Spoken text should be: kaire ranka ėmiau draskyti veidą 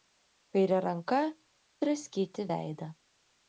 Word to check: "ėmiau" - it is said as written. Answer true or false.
false